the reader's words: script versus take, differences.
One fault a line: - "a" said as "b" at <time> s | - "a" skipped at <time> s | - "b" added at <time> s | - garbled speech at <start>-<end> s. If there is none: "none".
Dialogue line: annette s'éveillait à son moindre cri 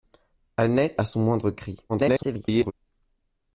- "s'éveillait" skipped at 1.0 s
- garbled speech at 1.9-2.7 s